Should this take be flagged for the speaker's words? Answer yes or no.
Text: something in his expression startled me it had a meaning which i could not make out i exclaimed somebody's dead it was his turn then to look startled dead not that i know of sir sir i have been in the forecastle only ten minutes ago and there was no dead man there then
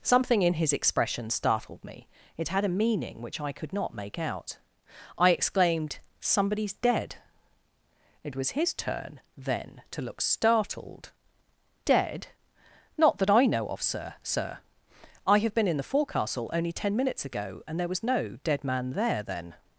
no